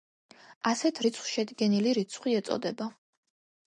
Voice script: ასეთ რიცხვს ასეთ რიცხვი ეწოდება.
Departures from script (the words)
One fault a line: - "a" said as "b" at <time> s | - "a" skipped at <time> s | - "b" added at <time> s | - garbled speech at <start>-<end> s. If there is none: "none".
- "ასეთ" said as "შედგენილი" at 1.4 s